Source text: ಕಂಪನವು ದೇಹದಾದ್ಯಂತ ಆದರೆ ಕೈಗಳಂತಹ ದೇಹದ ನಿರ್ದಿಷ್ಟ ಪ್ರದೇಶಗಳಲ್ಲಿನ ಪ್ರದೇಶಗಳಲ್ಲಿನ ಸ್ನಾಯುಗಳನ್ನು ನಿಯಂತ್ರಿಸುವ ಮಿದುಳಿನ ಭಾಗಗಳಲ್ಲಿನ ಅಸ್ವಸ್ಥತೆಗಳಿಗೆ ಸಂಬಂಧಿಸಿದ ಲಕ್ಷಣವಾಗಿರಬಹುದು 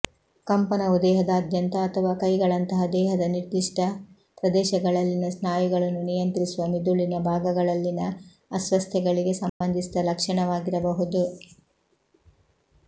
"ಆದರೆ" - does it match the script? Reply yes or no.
no